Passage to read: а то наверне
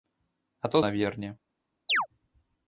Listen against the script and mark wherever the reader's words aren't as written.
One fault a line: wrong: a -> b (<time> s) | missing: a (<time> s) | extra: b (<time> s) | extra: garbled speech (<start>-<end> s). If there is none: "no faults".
no faults